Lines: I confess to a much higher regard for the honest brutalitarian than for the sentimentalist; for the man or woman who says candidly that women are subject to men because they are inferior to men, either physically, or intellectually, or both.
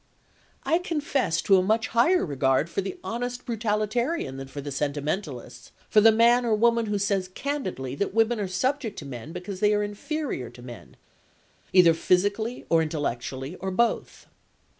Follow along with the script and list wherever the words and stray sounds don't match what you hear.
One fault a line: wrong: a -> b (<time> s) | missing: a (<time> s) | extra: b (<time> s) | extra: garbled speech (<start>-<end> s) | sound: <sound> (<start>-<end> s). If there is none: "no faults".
no faults